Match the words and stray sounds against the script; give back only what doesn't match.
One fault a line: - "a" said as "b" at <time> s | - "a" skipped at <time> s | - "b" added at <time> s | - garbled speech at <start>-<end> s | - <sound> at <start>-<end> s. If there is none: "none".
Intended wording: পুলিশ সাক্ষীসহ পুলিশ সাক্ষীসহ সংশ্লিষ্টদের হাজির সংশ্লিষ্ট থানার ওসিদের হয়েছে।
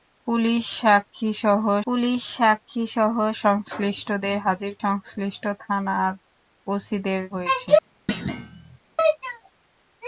- thud at 8.1-8.8 s